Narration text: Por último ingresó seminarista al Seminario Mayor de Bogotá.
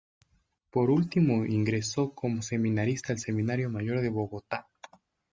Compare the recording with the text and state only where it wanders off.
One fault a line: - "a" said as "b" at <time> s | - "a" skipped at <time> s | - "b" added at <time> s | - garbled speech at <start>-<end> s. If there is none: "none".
- "como" added at 2.1 s